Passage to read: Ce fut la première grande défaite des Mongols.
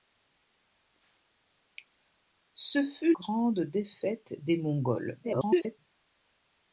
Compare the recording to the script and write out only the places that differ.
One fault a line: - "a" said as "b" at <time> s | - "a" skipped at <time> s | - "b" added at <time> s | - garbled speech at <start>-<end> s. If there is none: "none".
- "la première" skipped at 3.1 s
- garbled speech at 5.2-5.8 s